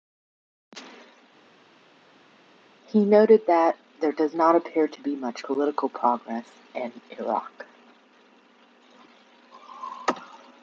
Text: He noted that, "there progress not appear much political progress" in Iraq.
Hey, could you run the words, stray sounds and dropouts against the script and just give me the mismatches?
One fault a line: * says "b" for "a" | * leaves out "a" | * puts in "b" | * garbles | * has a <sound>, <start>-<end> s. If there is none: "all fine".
* says "does" for "progress"
* puts in "to be"